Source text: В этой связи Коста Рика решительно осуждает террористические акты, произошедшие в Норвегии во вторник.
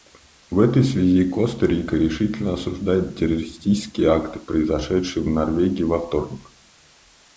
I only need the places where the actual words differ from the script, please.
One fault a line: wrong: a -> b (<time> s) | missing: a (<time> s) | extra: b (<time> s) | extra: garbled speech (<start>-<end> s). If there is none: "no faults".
no faults